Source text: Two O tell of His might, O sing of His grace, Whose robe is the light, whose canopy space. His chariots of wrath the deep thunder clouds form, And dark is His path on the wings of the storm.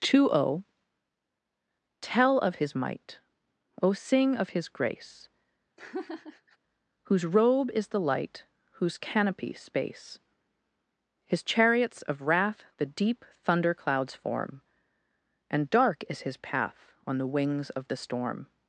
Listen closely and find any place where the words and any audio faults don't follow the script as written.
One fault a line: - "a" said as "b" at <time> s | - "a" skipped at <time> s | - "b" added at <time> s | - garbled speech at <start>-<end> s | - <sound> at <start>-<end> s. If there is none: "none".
- laugh at 5.8-6.6 s